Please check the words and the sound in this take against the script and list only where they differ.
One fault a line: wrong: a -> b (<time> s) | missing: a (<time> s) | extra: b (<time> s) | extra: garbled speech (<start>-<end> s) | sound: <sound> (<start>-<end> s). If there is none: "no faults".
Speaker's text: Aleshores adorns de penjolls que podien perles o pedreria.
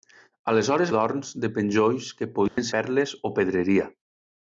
sound: dropout (2.5-2.6 s)